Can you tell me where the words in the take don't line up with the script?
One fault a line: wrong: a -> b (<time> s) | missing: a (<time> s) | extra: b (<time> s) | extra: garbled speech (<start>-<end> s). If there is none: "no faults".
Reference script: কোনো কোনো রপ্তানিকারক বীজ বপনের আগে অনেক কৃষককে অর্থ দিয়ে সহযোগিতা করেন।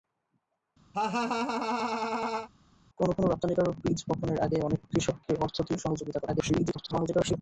extra: garbled speech (6.3-7.4 s)